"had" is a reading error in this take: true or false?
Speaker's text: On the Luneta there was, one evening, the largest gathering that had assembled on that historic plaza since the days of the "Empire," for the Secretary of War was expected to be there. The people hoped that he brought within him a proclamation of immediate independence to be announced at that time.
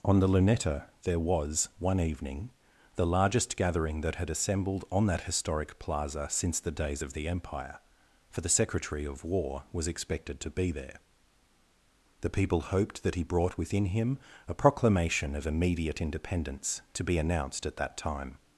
false